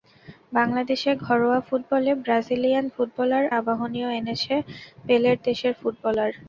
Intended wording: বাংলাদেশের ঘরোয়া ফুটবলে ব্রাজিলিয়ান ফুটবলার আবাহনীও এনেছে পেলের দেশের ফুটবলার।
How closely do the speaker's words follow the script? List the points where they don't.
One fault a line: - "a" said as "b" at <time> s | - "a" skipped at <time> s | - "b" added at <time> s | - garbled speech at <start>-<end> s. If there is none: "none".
none